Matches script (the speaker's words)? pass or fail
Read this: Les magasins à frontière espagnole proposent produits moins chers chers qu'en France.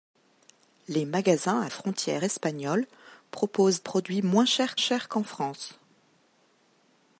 pass